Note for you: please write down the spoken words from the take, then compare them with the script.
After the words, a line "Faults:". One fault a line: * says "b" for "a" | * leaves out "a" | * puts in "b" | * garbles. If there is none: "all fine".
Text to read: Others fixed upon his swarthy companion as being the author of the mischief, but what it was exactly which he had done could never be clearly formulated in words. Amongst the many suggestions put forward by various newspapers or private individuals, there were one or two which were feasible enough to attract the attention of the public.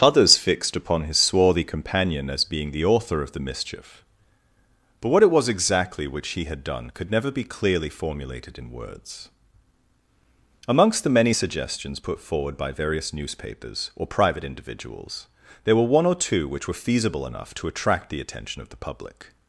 Others fixed upon his swarthy companion as being the author of the mischief, but what it was exactly which he had done could never be clearly formulated in words. Amongst the many suggestions put forward by various newspapers or private individuals, there were one or two which were feasible enough to attract the attention of the public.
Faults:
all fine